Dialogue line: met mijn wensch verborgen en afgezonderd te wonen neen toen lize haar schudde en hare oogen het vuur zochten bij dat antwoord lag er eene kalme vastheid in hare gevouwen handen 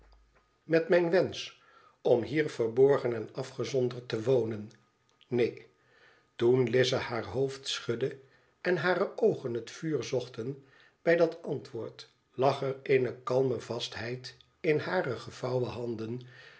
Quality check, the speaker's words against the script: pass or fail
fail